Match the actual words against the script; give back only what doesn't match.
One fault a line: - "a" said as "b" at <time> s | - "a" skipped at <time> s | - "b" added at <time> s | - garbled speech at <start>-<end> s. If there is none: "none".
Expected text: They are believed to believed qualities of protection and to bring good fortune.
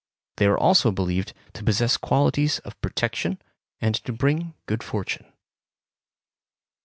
- "also" added at 0.6 s
- "believed" said as "possess" at 1.6 s